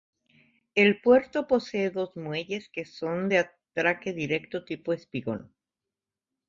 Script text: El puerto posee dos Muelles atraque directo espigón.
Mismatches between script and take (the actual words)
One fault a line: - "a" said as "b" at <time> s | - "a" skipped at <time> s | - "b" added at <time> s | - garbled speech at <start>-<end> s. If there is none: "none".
- "que son de" added at 2.7 s
- "tipo" added at 4.6 s